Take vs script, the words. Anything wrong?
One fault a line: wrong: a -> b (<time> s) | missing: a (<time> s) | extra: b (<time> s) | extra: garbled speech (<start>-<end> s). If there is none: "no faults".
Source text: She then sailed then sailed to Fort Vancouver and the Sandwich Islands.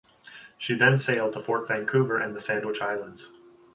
missing: then sailed (1.3 s)